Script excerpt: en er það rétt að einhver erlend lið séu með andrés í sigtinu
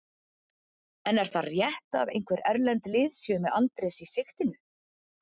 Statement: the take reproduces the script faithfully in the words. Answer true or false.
true